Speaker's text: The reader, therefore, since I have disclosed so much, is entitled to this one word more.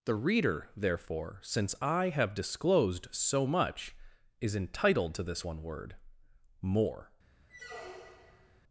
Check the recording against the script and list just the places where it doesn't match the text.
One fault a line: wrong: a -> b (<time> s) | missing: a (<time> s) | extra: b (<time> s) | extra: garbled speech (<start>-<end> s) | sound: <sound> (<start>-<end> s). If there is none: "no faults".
sound: squeak (7.5-8.6 s)